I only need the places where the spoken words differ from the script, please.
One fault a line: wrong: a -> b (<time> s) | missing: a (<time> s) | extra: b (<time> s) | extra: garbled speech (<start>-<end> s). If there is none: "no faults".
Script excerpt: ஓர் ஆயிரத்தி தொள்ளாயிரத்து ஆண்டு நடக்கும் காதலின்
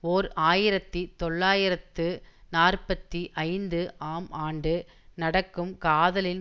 extra: நாற்பத்தி ஐந்து ஆம் (2.5 s)